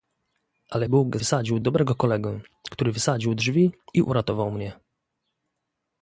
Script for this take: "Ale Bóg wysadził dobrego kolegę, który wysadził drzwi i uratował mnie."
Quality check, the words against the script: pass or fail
pass